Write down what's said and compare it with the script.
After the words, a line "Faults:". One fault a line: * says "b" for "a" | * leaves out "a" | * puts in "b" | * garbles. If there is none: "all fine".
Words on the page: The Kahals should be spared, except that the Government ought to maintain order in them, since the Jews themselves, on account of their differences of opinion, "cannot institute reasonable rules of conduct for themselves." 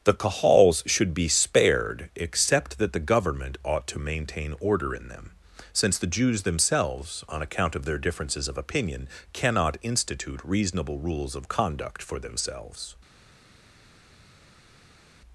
The Kahals should be spared, except that the Government ought to maintain order in them, since the Jews themselves, on account of their differences of opinion, "cannot institute reasonable rules of conduct for themselves."
Faults:
all fine